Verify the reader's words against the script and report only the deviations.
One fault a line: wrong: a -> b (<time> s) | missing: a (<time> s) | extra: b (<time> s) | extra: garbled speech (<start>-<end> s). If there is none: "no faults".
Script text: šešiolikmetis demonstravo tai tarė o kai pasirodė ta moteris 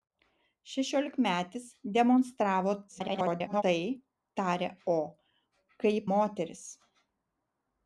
extra: garbled speech (2.9-3.6 s)
missing: pasirodė ta (6.0 s)